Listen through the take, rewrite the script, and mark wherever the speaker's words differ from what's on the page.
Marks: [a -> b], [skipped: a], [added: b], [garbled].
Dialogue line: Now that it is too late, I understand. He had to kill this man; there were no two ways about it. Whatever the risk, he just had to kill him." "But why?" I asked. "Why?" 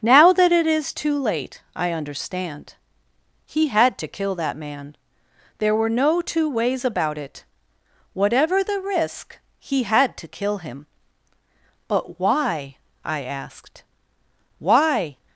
Now that it is too late, I understand. He had to kill [this -> that] man; there were no two ways about it. Whatever the risk, he [skipped: just] had to kill him." "But why?" I asked. "Why?"